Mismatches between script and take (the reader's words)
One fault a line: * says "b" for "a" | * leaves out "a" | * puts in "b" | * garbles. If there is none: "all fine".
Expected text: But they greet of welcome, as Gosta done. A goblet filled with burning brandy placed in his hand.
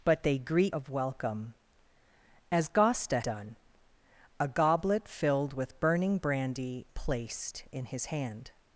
all fine